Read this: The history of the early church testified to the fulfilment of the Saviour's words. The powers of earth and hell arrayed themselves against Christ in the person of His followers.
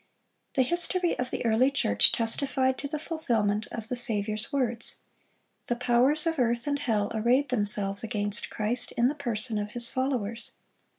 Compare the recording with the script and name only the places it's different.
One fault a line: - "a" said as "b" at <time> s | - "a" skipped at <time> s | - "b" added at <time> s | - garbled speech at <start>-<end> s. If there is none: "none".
none